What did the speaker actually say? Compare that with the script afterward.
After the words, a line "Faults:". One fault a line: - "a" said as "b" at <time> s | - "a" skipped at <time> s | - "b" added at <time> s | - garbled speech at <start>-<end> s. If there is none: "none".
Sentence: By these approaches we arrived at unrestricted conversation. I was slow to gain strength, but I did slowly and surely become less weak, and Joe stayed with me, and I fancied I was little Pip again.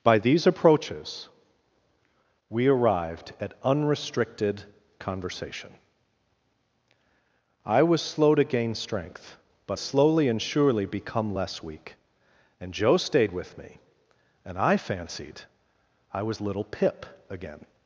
By these approaches we arrived at unrestricted conversation. I was slow to gain strength, but slowly and surely become less weak, and Joe stayed with me, and I fancied I was little Pip again.
Faults:
- "I did" skipped at 9.8 s